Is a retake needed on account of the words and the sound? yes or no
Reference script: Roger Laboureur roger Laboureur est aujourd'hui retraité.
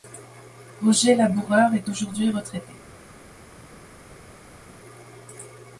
yes